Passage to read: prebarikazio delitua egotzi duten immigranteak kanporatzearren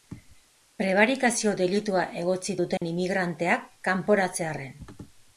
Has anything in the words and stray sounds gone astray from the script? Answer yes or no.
yes